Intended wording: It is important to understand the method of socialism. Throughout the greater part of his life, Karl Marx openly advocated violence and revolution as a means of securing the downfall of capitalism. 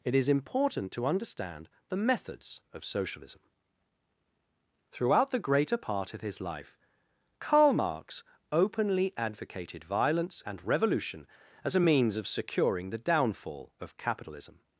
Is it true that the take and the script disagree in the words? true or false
true